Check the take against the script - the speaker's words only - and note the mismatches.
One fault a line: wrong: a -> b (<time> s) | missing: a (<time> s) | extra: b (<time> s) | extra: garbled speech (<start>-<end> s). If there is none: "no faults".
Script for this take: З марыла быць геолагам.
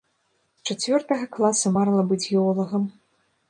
extra: чацвёртага класа (0.8 s)